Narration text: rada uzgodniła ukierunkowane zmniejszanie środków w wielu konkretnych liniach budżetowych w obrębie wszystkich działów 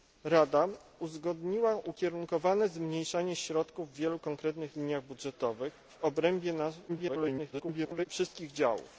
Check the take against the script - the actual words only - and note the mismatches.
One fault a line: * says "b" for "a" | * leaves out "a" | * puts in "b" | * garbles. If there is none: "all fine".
* garbles